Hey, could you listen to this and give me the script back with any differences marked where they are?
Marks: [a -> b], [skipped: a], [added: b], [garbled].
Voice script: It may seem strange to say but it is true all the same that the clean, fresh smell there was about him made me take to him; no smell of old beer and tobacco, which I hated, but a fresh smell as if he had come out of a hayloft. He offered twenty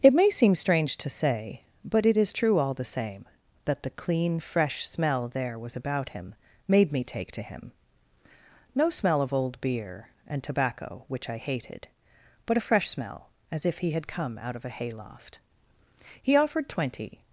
It may seem strange to say but it is true all the same that the clean, fresh smell there was about him made me take to him; no smell of old beer and tobacco, which I hated, but a fresh smell as if he had come out of a hayloft. He offered twenty